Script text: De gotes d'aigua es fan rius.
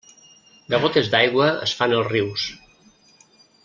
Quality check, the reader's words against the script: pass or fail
fail